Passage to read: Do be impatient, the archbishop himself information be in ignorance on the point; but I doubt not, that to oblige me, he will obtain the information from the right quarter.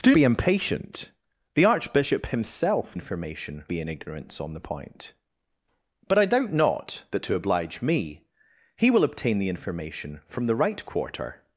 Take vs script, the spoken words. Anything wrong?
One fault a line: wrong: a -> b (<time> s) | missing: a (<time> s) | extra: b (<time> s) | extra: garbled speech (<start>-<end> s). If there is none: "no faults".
no faults